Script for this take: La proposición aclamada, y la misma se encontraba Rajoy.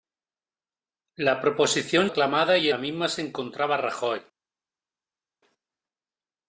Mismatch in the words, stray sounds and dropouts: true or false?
false